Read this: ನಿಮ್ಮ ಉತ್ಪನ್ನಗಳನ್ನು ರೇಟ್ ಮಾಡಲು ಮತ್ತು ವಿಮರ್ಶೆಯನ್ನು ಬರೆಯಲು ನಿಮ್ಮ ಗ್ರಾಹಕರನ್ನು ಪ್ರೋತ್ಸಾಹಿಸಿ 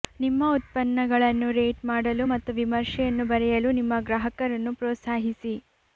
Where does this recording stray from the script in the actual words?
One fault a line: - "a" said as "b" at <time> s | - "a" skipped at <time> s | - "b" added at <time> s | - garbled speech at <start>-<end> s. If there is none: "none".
none